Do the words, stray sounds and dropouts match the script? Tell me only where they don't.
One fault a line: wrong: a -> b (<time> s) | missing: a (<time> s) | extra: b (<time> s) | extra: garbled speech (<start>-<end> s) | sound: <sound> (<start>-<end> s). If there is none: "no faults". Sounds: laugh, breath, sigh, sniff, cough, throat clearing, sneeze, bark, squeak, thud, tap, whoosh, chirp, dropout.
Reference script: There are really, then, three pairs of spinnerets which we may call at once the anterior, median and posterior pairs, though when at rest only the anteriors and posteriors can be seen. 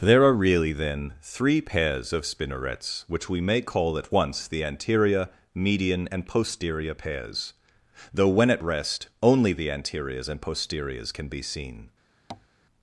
sound: tap (12.3-12.5 s)